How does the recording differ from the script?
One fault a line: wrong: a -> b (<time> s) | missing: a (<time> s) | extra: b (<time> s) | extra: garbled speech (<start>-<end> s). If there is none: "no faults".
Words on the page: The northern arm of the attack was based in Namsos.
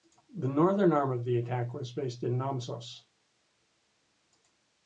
no faults